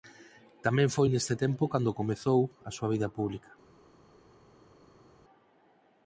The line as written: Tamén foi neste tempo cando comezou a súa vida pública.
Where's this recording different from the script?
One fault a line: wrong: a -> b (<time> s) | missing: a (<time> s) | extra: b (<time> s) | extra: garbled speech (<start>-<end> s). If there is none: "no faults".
no faults